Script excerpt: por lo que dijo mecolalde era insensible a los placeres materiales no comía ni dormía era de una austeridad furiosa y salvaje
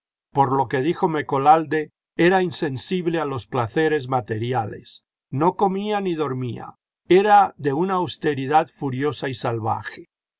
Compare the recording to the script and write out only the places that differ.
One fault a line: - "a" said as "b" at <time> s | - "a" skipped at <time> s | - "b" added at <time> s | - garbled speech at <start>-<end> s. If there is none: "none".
none